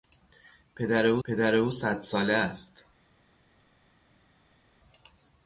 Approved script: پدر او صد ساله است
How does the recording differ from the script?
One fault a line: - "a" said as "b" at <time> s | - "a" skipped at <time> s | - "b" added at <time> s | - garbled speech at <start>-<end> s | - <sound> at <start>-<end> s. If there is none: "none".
- "پدر او" added at 1.2 s